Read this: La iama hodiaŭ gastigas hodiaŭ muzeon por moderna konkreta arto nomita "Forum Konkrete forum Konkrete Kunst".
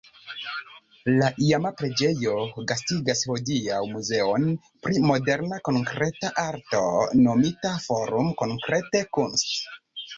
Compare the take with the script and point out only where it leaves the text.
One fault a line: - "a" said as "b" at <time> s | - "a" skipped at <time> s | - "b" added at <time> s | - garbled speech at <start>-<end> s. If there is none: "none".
- "hodiaŭ" said as "preĝejo" at 1.8 s
- "por" said as "pri" at 4.9 s
- "forum Konkrete" skipped at 9.1 s